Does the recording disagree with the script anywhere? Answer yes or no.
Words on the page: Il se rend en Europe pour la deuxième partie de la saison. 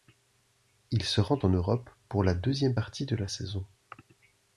no